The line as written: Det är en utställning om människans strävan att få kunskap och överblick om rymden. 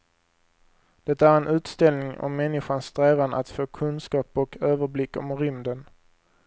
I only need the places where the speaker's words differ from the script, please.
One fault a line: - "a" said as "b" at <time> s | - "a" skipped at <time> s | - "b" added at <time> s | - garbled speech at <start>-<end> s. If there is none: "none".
none